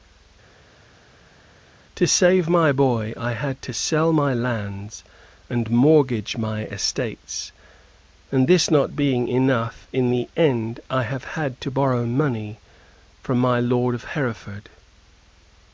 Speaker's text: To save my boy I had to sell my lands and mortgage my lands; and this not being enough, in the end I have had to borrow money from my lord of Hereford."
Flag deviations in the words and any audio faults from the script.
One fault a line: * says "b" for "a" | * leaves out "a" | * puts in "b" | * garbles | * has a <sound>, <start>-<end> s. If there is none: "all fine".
* says "estates" for "lands"